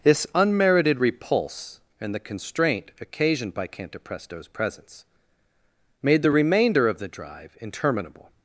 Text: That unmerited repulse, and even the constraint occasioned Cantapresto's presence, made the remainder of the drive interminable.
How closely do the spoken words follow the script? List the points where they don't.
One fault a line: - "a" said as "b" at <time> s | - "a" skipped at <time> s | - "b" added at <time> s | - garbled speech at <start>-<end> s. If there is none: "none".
- "That" said as "This" at 0.0 s
- "even" skipped at 2.1 s
- "by" added at 3.5 s